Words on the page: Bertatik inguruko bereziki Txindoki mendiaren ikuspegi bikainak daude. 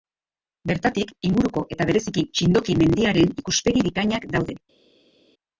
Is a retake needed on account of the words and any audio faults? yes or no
yes